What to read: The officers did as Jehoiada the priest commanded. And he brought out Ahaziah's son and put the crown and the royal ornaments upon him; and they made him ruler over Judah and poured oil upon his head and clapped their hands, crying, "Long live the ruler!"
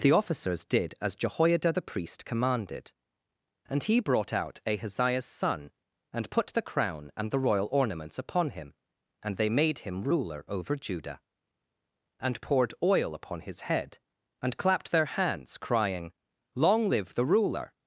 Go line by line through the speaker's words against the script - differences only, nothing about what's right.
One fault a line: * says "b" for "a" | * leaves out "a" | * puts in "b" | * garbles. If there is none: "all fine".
all fine